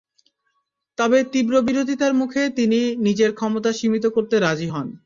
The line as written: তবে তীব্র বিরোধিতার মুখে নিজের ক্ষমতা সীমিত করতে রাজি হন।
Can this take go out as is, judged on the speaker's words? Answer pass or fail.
fail